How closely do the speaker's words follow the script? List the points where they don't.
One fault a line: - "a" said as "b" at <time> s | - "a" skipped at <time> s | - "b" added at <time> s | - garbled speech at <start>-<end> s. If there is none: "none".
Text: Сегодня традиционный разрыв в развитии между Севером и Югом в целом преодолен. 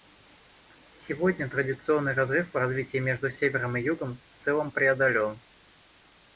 none